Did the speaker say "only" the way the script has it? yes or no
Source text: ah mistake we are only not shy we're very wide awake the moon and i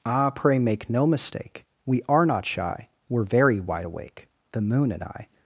no